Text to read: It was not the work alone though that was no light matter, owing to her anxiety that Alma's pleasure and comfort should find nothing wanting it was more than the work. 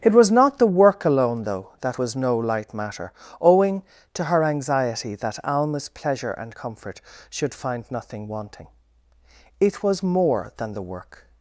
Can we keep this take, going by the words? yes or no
yes